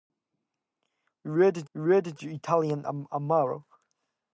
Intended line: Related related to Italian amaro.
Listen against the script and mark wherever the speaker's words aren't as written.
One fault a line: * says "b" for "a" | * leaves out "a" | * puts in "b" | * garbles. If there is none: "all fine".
all fine